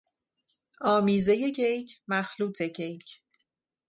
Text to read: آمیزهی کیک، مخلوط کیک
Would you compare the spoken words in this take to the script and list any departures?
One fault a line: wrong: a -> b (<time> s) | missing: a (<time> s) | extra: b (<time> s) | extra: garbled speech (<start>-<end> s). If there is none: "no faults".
no faults